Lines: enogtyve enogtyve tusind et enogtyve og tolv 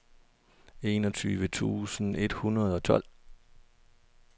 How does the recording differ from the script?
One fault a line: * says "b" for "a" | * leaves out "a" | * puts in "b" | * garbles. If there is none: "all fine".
* leaves out "enogtyve"
* says "hundrede" for "enogtyve"